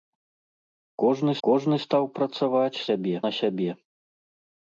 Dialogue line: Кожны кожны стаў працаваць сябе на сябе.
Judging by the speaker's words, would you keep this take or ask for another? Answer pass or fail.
pass